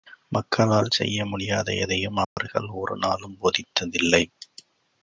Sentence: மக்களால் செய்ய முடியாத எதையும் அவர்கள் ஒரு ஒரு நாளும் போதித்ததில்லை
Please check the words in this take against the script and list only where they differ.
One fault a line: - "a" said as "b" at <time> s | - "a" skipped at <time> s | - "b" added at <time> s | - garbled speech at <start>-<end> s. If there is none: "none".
- "ஒரு" skipped at 3.0 s